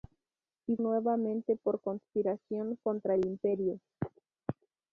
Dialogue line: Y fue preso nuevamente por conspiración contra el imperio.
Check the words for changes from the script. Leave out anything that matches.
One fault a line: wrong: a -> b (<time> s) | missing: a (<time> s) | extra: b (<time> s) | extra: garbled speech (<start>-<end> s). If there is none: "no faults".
missing: fue preso (0.8 s)